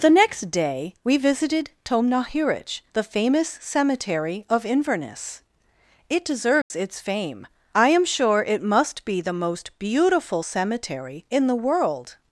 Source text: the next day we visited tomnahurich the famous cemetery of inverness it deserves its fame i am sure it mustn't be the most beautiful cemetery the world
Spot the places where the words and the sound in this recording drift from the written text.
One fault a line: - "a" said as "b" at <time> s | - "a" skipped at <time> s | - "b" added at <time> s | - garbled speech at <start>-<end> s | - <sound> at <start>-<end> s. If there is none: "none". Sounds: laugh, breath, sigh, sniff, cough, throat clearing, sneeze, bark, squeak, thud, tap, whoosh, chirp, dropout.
- dropout at 6.6-6.7 s
- "mustn't" said as "must" at 8.6 s
- "in" added at 11.3 s